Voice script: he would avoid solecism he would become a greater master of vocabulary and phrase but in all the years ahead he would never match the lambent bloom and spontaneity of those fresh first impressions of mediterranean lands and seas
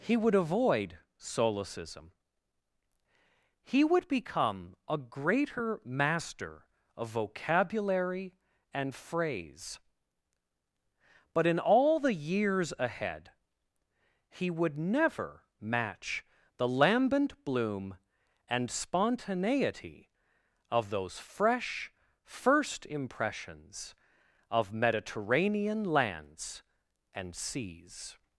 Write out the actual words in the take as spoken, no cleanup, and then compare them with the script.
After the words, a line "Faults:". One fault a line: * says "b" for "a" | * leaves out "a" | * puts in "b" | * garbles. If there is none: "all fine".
he would avoid solecism he would become a greater master of vocabulary and phrase but in all the years ahead he would never match the lambent bloom and spontaneity of those fresh first impressions of mediterranean lands and seas
Faults:
all fine